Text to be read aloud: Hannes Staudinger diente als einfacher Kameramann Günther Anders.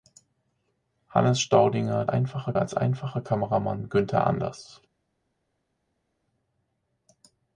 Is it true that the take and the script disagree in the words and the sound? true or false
true